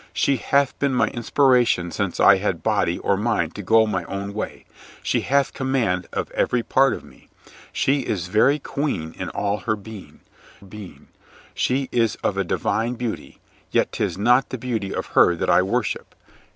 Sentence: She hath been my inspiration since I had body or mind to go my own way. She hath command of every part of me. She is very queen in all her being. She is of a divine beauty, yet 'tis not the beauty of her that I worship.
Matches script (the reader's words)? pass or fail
fail